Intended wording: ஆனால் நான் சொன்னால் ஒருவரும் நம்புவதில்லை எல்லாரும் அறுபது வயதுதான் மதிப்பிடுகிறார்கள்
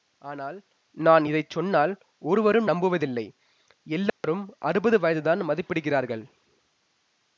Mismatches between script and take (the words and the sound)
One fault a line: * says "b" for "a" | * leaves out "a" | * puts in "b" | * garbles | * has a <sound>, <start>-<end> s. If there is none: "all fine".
* puts in "இதை"
* has a dropout, 4.1-4.2 s